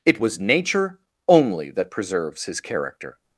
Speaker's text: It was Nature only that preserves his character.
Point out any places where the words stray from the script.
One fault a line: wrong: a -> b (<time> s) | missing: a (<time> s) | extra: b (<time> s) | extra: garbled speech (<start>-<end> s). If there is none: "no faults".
no faults